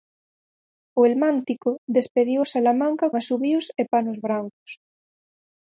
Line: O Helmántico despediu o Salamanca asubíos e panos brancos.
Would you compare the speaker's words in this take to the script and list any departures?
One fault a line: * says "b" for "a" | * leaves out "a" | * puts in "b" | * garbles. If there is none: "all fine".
all fine